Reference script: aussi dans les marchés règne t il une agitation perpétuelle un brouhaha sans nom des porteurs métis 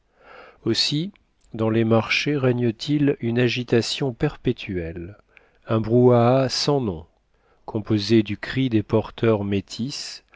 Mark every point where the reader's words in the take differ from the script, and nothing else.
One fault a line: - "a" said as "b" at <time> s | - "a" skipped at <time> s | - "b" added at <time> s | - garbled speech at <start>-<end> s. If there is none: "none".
- "composé du cri" added at 7.7 s